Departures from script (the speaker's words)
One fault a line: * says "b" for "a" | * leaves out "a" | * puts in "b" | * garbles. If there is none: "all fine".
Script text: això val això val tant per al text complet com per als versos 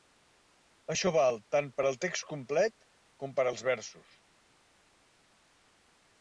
* leaves out "això val"